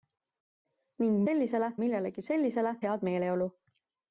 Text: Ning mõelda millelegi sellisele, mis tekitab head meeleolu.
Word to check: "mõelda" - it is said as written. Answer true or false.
false